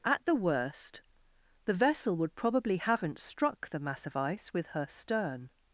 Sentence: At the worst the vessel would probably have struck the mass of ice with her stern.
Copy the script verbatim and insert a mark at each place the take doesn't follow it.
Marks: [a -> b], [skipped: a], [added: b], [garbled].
At the worst the vessel would probably [have -> haven't] struck the mass of ice with her stern.